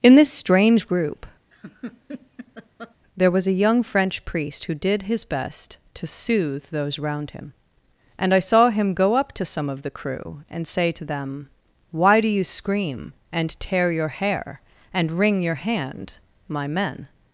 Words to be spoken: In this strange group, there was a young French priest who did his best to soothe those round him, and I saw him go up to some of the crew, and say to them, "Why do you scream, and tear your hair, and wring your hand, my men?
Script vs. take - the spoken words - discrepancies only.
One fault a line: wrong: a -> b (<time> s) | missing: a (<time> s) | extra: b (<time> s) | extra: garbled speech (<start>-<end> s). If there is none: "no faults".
no faults